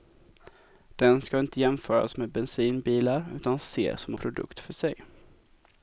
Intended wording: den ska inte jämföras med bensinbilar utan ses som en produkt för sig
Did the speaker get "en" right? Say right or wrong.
wrong